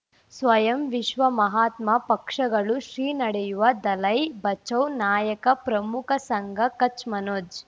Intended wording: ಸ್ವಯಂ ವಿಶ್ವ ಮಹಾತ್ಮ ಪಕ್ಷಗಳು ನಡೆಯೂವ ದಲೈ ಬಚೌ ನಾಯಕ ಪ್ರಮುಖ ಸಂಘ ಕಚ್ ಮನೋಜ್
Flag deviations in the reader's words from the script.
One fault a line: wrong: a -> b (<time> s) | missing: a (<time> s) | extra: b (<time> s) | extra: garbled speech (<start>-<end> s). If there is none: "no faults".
extra: ಶ್ರೀ (2.8 s)